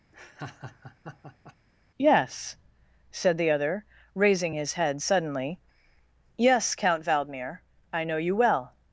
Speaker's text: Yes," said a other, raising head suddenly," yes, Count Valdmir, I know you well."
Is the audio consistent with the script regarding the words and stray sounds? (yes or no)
no